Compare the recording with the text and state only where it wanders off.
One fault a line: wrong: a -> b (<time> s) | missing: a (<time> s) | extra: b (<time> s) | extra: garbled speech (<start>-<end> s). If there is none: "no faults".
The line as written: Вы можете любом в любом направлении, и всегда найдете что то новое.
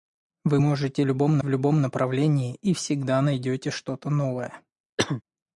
no faults